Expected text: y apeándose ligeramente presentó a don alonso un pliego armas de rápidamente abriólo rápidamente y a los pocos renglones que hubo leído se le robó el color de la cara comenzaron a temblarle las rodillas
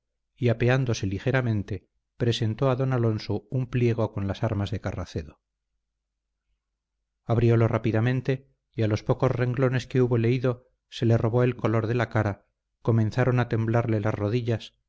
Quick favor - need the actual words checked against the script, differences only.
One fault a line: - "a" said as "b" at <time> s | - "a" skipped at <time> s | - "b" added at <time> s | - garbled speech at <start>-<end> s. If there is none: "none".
- "con las" added at 4.1 s
- "rápidamente" said as "carracedo" at 4.8 s